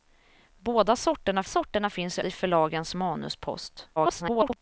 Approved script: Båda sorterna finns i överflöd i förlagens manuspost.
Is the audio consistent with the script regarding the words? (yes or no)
no